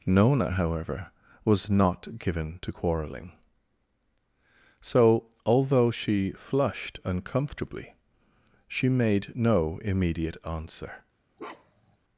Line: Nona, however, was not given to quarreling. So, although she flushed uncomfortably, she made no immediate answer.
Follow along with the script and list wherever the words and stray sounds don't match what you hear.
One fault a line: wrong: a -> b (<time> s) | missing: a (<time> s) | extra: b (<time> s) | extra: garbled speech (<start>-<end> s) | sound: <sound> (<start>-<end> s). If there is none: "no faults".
sound: bark (11.4-12.0 s)